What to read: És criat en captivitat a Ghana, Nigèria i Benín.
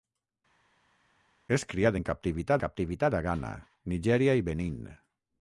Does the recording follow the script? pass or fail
fail